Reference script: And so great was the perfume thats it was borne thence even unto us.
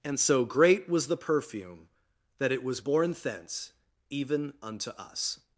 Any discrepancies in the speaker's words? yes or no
yes